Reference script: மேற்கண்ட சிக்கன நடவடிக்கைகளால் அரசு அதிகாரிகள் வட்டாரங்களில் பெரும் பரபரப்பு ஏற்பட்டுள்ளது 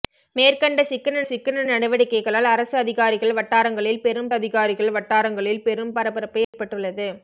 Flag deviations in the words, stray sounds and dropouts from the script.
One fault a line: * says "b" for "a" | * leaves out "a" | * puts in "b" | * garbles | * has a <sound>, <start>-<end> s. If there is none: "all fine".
* puts in "சிக்கன"
* puts in "அதிகாரிகள் வட்டாரங்களில் பெரும்"
* has a dropout, 6.4-6.5 s